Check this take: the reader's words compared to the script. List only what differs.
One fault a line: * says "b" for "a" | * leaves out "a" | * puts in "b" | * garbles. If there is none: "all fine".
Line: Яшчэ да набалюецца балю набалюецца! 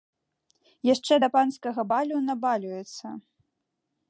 * says "панскага" for "набалюецца"